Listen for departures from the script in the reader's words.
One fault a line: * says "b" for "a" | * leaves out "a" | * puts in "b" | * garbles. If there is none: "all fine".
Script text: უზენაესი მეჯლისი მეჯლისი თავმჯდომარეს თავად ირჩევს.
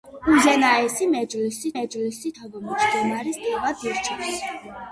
all fine